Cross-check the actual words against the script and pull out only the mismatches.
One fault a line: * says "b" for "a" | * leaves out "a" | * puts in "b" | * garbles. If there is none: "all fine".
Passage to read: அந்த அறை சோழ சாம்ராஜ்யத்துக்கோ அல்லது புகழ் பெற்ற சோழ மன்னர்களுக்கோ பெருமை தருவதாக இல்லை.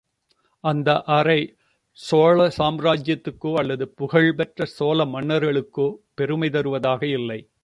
all fine